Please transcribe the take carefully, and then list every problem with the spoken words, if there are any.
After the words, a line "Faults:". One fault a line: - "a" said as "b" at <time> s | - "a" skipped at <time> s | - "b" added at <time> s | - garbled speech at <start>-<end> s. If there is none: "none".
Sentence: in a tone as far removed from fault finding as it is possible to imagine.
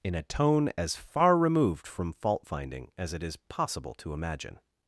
in a tone as far removed from fault finding as it is possible to imagine.
Faults:
none